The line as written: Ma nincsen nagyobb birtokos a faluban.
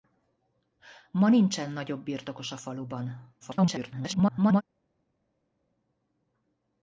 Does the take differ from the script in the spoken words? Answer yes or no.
yes